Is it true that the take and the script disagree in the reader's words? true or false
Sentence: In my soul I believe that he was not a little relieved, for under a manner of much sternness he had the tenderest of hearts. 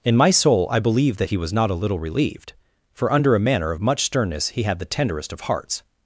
false